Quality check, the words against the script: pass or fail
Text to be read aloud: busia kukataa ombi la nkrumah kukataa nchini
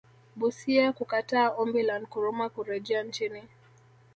fail